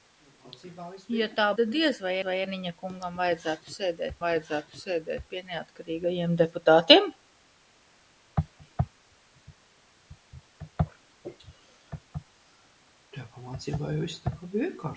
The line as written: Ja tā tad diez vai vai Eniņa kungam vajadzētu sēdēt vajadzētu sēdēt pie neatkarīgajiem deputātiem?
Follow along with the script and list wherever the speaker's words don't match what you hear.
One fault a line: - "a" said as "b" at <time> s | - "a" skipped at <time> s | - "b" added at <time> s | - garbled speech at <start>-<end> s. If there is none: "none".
none